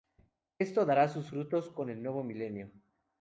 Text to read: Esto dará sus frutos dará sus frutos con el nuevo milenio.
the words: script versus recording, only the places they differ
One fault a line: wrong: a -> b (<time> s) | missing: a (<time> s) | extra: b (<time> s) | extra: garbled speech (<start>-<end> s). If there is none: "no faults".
missing: dará sus frutos (1.7 s)